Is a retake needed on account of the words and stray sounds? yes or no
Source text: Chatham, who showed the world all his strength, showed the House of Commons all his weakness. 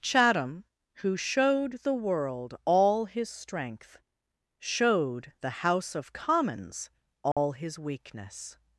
yes